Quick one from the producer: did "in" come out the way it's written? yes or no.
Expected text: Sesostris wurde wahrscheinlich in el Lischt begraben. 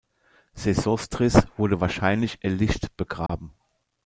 no